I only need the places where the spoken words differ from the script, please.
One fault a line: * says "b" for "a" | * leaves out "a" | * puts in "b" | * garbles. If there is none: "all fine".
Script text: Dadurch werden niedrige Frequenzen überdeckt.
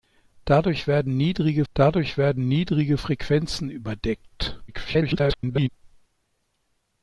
* puts in "dadurch werden niedrige"
* garbles